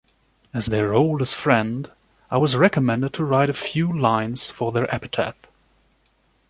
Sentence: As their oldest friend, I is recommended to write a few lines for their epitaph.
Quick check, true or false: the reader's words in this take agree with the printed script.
false